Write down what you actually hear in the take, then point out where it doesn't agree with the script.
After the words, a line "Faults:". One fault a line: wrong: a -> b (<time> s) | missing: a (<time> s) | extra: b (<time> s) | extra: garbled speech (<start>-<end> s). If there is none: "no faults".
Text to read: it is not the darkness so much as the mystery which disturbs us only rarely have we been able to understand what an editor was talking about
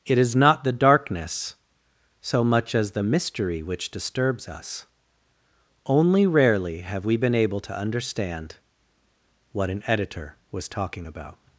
it is not the darkness so much as the mystery which disturbs us only rarely have we been able to understand what an editor was talking about
Faults:
no faults